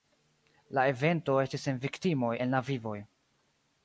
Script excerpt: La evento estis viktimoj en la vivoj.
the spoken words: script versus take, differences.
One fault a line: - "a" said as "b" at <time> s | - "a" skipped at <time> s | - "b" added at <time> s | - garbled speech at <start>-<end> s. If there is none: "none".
- "sen" added at 1.7 s